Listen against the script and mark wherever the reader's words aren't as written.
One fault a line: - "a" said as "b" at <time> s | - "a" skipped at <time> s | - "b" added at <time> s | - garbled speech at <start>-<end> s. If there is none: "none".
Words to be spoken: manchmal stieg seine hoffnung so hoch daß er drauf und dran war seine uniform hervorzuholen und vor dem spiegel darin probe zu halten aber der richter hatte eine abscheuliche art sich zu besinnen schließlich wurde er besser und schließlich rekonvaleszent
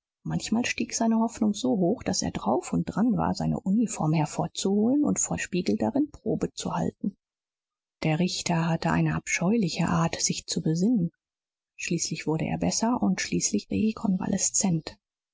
- "dem" skipped at 5.4 s
- "aber" skipped at 7.2 s